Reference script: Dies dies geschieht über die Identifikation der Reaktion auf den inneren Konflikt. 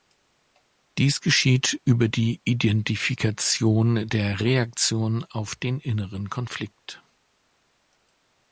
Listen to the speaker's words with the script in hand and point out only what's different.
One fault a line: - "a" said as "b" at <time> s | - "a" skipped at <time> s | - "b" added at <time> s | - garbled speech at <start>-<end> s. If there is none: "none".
- "dies" skipped at 1.2 s